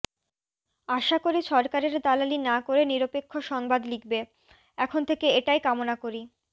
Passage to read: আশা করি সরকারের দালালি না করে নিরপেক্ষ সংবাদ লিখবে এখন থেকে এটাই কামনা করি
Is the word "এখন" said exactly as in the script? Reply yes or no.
yes